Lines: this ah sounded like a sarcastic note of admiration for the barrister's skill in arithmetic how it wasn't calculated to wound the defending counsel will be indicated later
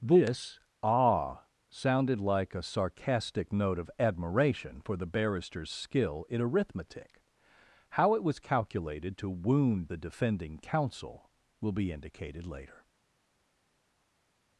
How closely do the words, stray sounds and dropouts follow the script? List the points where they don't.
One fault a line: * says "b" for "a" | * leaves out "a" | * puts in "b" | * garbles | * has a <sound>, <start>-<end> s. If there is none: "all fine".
* says "was" for "wasn't"